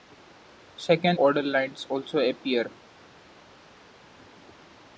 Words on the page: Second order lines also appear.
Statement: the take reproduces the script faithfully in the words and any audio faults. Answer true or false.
true